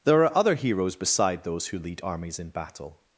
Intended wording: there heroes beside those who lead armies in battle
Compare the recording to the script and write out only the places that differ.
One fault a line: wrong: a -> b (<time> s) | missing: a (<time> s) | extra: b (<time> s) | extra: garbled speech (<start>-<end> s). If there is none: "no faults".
extra: are other (0.2 s)